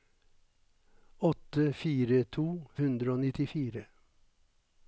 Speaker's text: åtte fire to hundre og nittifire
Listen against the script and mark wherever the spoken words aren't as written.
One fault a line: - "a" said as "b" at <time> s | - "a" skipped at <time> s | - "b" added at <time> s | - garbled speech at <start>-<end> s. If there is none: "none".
none